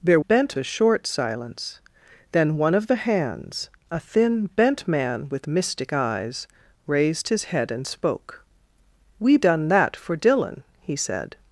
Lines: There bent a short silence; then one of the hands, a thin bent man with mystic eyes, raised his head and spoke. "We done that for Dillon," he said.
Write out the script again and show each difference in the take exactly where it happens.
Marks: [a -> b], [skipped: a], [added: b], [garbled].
There bent a short silence; then one of the hands, a thin bent man with mystic eyes, raised his head and spoke. "We done that for Dillon," he said.